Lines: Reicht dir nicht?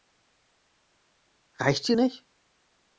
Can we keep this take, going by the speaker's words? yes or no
yes